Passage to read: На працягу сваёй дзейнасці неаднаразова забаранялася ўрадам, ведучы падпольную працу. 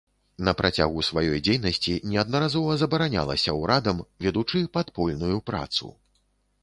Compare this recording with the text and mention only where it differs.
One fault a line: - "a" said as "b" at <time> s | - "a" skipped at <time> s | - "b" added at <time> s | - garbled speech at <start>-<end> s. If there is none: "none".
none